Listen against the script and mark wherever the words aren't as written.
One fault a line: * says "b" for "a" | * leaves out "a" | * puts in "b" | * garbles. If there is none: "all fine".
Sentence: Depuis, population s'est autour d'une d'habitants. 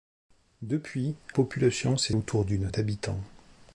all fine